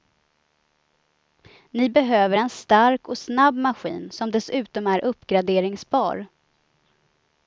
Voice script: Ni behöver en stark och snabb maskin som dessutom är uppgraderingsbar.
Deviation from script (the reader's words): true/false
false